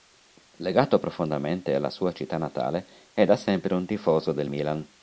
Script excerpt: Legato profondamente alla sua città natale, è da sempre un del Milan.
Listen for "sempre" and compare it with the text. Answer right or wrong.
right